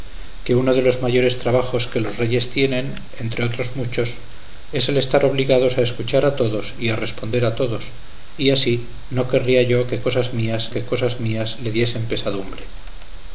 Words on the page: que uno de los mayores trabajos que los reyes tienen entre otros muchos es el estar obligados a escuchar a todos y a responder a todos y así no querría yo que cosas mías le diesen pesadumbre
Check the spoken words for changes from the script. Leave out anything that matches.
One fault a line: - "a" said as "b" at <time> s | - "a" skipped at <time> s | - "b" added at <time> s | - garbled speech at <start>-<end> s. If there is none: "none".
- "que cosas mías" added at 10.7 s